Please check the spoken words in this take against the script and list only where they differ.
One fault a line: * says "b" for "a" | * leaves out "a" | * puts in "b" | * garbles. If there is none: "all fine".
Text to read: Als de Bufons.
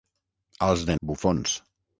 all fine